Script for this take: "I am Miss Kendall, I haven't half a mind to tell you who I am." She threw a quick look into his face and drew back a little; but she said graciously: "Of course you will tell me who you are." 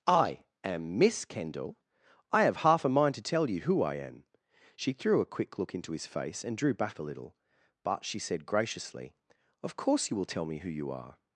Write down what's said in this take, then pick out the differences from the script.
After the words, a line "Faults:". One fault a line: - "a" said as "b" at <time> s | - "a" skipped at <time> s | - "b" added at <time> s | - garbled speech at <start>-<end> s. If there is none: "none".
"I am Miss Kendall, I have half a mind to tell you who I am." She threw a quick look into his face and drew back a little; but she said graciously: "Of course you will tell me who you are."
Faults:
- "haven't" said as "have" at 2.5 s